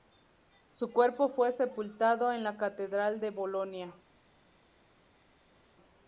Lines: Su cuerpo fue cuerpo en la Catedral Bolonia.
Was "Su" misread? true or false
false